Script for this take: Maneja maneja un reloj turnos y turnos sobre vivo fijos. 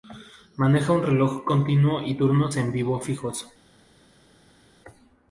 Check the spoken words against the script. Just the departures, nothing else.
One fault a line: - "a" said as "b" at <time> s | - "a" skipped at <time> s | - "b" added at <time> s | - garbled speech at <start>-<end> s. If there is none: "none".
- "maneja" skipped at 0.9 s
- "turnos" said as "continuo" at 1.4 s
- "sobre" said as "en" at 2.5 s